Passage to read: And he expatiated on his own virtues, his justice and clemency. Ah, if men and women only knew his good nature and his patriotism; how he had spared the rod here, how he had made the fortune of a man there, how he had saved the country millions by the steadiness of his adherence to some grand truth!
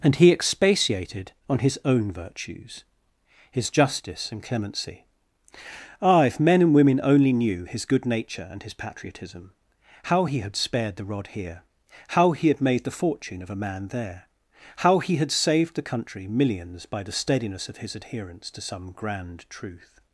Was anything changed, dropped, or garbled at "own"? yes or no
no